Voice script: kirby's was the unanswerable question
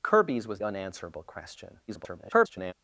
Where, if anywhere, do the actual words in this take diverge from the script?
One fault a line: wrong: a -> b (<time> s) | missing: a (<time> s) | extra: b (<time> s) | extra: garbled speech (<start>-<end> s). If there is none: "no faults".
missing: the (0.6 s)
extra: garbled speech (1.9-2.7 s)